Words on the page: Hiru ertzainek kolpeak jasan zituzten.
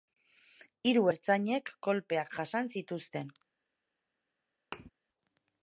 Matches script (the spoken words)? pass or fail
pass